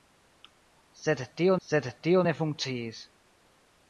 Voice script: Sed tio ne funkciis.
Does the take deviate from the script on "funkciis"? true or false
false